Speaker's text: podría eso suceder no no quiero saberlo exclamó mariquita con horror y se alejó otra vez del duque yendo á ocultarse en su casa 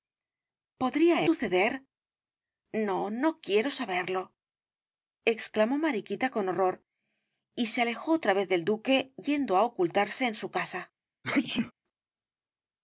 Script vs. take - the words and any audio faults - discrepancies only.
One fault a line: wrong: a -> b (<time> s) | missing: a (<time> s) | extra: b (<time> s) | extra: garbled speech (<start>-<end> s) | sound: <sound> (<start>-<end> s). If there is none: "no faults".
missing: eso (1.2 s)
sound: sneeze (11.2-11.7 s)